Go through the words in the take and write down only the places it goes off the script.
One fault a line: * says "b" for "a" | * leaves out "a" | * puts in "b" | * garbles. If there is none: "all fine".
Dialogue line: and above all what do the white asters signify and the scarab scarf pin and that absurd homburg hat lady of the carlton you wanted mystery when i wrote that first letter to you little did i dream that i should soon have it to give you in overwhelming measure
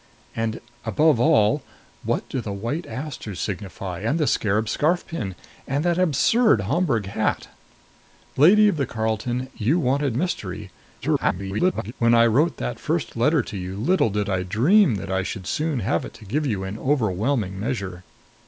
* garbles